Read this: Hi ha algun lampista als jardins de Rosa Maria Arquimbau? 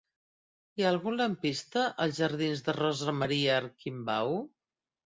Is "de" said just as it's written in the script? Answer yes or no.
yes